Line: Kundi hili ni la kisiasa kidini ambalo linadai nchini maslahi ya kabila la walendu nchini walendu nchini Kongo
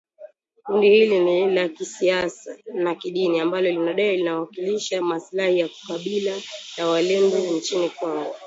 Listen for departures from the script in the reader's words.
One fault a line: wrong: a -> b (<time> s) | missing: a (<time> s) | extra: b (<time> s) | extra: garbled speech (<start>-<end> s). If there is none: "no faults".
extra: na (2.7 s)
wrong: nchini -> linawakilisha (4.2 s)
missing: walendu nchini (7.9 s)